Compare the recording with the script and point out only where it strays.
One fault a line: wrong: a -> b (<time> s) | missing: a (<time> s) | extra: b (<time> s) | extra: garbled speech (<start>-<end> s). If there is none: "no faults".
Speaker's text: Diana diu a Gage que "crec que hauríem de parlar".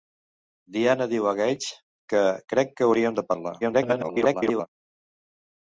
extra: garbled speech (3.6-4.7 s)